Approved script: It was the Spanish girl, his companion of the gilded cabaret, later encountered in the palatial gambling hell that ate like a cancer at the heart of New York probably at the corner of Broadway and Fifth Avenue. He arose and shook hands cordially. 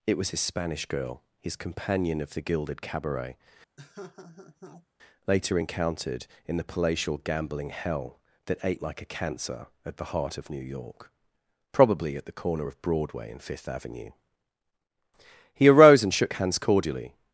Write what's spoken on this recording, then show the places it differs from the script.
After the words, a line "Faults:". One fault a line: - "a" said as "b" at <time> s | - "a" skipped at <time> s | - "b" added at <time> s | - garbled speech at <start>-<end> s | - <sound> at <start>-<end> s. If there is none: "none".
It was his Spanish girl, his companion of the gilded cabaret, later encountered in the palatial gambling hell that ate like a cancer at the heart of New York probably at the corner of Broadway and Fifth Avenue. He arose and shook hands cordially.
Faults:
- "the" said as "his" at 0.3 s
- laugh at 3.8-4.9 s